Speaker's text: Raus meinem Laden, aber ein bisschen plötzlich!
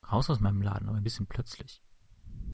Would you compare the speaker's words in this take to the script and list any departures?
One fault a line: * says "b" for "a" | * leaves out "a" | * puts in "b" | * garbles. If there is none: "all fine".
* puts in "aus"